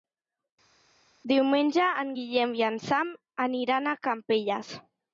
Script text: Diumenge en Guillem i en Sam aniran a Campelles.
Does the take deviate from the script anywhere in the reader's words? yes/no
no